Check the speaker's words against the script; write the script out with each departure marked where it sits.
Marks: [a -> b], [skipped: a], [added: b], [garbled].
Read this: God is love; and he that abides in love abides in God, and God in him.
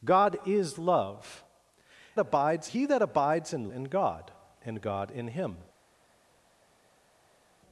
God is love; [and -> abides] he that abides in [skipped: love abides] in God, and God in him.